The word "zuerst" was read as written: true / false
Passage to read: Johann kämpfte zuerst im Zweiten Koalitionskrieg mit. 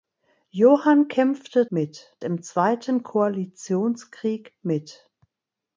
false